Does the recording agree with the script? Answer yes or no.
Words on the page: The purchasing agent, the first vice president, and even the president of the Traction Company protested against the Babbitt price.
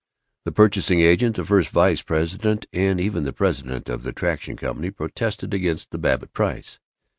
yes